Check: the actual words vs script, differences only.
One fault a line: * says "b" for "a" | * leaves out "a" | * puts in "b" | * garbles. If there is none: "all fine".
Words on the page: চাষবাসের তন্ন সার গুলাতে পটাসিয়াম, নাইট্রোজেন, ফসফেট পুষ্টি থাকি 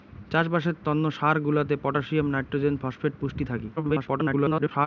* garbles